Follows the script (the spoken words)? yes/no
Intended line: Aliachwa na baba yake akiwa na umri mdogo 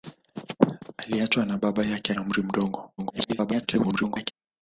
no